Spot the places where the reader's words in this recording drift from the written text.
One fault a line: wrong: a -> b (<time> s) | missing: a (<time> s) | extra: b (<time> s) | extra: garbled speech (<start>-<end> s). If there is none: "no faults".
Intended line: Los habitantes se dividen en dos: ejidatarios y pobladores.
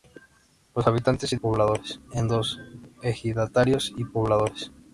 wrong: dividen -> pobladores (1.3 s)